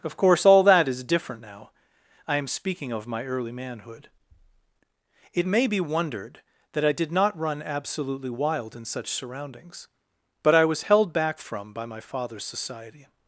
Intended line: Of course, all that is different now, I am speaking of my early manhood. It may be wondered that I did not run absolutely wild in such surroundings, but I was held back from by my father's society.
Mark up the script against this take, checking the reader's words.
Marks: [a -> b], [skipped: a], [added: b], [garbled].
Of course, all that is different now, I am speaking of my early manhood. It may be wondered that I did not run absolutely wild in such surroundings, but I was held back from by my father's society.